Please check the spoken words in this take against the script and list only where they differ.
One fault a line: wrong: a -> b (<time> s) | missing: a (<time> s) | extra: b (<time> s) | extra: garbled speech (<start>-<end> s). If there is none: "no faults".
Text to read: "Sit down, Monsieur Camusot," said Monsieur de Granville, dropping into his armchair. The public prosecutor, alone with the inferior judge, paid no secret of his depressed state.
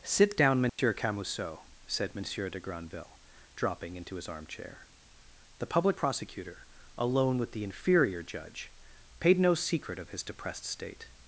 no faults